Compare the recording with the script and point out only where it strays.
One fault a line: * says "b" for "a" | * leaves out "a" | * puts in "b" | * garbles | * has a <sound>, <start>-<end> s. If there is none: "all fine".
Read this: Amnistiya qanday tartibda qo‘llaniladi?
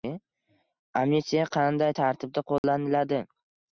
* has a dropout, 2.6-2.6 s